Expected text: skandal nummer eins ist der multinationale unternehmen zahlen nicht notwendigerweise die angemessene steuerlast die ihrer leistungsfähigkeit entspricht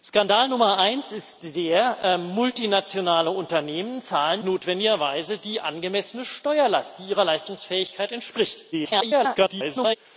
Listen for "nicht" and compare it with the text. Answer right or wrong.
wrong